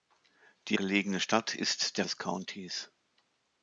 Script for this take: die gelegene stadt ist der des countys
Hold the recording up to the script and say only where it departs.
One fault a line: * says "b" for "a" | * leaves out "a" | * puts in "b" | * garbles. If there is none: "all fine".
all fine